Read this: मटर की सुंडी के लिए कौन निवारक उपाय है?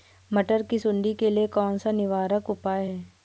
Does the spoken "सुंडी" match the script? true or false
true